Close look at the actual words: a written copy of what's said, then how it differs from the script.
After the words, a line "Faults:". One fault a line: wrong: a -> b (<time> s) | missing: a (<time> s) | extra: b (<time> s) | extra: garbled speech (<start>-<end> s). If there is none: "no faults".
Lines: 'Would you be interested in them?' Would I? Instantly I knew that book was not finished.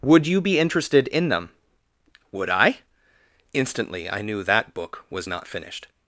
'Would you be interested in them?' Would I? Instantly I knew that book was not finished.
Faults:
no faults